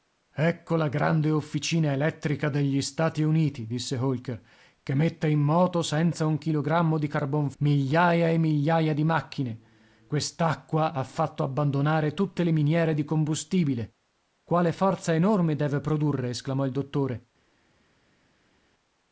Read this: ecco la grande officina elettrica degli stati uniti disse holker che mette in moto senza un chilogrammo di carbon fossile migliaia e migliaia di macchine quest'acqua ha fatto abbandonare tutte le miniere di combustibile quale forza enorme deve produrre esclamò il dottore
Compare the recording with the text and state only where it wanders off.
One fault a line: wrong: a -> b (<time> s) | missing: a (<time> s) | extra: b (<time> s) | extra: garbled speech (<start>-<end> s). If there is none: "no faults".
missing: fossile (7.5 s)